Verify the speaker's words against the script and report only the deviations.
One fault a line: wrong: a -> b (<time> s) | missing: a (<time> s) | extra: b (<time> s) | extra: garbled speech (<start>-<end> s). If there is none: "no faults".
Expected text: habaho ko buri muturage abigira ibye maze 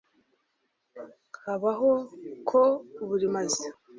missing: muturage abigira ibye (3.3 s)